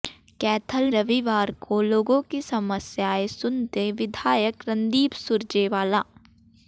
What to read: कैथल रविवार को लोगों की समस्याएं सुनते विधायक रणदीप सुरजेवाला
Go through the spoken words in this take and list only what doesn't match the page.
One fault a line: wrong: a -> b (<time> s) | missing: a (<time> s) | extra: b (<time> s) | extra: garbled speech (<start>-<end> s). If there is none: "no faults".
no faults